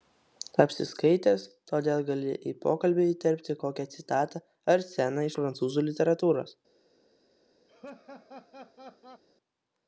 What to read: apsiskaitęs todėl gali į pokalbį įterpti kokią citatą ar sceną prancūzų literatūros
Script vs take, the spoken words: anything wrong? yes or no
no